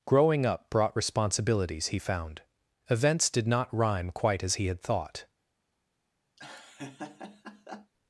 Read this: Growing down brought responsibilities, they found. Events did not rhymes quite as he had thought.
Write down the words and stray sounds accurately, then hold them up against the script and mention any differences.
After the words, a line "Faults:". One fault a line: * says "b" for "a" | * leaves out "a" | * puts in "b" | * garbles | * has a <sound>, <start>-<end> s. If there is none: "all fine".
Growing up brought responsibilities, he found. Events did not rhyme quite as he had thought.
Faults:
* says "up" for "down"
* says "he" for "they"
* says "rhyme" for "rhymes"
* has a laugh, 6.4-7.9 s